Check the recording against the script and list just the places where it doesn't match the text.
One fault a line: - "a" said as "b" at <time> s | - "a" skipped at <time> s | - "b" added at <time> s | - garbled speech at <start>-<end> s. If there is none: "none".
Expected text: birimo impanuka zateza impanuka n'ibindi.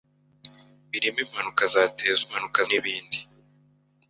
none